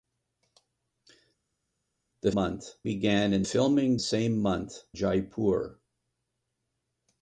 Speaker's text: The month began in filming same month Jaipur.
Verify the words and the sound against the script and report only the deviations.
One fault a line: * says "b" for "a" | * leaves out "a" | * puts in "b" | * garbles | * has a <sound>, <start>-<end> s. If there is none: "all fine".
all fine